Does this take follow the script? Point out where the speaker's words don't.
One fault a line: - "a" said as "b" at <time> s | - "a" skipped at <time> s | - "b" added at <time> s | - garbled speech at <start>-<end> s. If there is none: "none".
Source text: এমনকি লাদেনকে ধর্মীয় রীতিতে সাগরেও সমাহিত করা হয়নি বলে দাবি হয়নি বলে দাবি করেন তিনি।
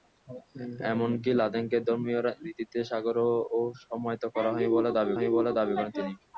none